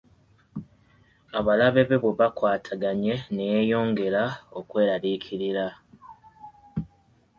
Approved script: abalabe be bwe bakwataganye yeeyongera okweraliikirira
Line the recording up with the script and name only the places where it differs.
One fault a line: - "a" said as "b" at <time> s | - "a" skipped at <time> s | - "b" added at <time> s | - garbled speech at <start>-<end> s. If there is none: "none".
- "ne" added at 3.3 s